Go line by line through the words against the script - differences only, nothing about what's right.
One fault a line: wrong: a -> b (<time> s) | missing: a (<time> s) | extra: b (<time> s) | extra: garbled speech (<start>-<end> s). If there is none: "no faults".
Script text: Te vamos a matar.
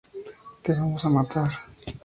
no faults